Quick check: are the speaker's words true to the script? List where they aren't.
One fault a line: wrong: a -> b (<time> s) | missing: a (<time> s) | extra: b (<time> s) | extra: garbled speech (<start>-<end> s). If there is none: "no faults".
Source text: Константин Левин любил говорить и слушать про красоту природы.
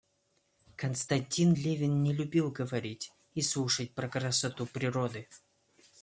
extra: не (2.0 s)